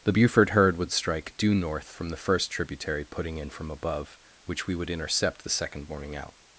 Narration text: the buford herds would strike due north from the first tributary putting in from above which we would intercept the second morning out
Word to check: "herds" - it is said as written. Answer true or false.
false